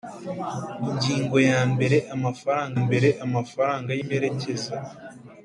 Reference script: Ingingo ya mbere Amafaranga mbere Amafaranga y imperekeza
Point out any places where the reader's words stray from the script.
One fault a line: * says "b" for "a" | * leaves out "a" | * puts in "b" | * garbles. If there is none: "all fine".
all fine